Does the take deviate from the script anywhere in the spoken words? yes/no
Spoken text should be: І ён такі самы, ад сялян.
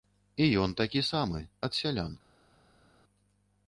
no